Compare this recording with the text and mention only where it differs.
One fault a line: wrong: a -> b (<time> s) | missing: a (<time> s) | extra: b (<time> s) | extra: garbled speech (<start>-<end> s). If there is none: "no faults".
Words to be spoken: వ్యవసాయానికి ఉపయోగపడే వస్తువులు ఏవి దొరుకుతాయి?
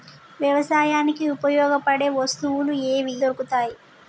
no faults